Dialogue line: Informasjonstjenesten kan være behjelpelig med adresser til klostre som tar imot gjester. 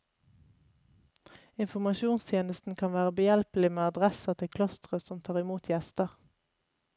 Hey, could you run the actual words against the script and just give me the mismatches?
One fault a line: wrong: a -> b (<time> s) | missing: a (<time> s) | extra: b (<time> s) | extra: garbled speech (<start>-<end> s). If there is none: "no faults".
no faults